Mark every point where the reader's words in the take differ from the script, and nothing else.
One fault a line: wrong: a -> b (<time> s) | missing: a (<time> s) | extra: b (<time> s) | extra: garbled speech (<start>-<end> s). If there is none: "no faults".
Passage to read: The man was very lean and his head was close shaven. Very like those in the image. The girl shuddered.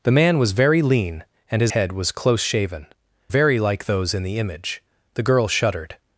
no faults